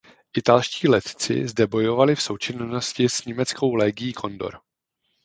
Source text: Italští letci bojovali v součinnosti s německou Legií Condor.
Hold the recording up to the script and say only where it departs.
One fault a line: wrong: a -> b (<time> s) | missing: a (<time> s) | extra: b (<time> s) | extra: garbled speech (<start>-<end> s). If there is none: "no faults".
extra: zde (1.5 s)